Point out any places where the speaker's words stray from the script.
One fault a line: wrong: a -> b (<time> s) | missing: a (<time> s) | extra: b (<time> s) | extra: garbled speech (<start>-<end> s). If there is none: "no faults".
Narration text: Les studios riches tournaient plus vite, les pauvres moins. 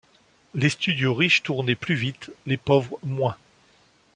no faults